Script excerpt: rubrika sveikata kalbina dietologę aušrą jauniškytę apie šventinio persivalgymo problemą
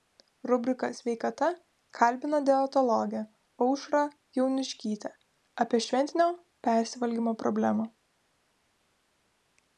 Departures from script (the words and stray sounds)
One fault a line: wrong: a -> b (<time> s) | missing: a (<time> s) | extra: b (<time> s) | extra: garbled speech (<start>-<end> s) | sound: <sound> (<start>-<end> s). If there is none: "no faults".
no faults